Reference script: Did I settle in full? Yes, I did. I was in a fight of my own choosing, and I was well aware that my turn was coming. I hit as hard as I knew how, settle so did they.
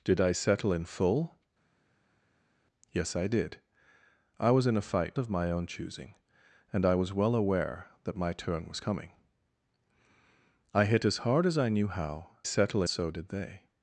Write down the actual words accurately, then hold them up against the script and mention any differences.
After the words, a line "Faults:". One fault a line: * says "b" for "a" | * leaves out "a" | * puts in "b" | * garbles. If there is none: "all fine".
Did I settle in full? Yes, I did. I was in a fight of my own choosing, and I was well aware that my turn was coming. I hit as hard as I knew how, settle so did they.
Faults:
all fine